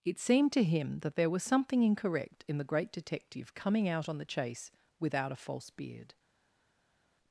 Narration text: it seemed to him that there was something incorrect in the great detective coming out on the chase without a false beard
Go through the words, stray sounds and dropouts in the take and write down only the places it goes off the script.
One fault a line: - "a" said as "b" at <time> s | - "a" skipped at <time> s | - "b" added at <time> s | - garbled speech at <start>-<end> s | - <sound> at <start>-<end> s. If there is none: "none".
none